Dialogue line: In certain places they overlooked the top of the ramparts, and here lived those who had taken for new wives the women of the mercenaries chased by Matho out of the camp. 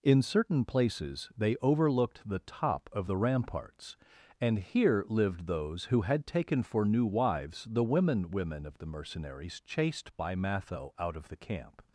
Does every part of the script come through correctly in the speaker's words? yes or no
no